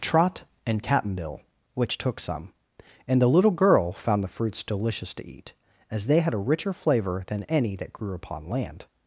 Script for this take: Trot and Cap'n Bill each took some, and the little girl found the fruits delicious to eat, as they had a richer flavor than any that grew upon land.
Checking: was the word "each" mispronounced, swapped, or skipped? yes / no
yes